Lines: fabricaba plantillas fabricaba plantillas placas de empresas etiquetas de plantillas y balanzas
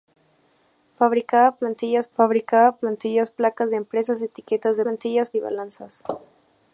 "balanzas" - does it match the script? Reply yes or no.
yes